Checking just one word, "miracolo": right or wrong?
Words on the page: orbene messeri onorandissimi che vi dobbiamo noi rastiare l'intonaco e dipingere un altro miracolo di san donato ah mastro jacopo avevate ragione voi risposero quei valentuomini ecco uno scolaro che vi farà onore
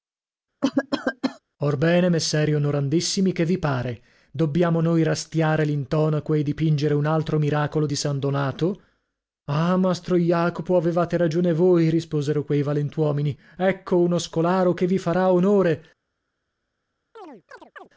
right